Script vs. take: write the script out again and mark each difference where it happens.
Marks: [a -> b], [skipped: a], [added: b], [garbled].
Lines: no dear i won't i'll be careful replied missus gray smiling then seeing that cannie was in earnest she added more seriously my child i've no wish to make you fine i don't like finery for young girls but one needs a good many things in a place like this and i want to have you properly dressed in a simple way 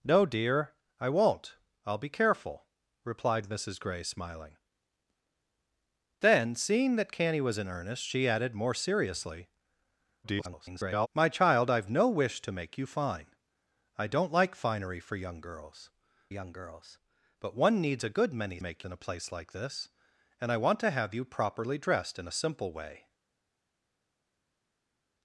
no dear i won't i'll be careful replied missus gray smiling then seeing that cannie was in earnest she added more seriously [garbled] my child i've no wish to make you fine i don't like finery for young girls [added: young girls] but one needs a good many [things -> make] in a place like this and i want to have you properly dressed in a simple way